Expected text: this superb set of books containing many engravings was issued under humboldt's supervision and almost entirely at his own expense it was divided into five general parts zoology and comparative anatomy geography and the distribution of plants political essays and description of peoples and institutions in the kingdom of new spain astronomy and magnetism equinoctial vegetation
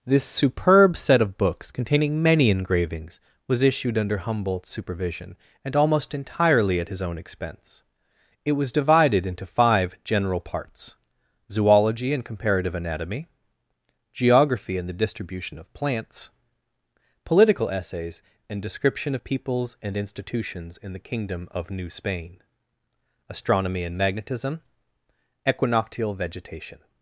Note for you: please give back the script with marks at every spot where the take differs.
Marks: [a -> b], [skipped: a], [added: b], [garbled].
this superb set of books containing many engravings was issued under humboldt's supervision and almost entirely at his own expense it was divided into five general parts zoology and comparative anatomy geography and the distribution of plants political essays and description of peoples and institutions in the kingdom of new spain astronomy and magnetism equinoctial vegetation